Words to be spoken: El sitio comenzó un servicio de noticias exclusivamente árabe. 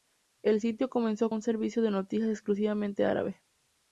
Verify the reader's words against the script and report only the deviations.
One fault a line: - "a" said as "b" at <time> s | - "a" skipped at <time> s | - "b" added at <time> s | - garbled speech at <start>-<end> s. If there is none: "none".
none